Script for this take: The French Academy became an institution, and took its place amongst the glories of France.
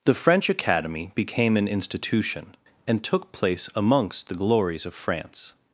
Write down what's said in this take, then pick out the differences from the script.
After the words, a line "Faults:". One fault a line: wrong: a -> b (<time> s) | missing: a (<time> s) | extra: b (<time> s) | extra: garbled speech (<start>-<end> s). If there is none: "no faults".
The French Academy became an institution, and took place amongst the glories of France.
Faults:
missing: its (3.3 s)